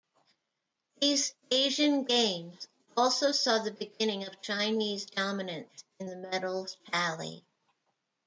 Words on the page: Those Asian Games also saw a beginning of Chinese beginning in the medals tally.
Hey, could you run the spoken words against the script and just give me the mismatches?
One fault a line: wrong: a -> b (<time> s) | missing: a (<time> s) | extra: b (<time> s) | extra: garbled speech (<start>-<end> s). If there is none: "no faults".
wrong: Those -> These (1.0 s)
wrong: a -> the (3.6 s)
wrong: beginning -> dominance (5.0 s)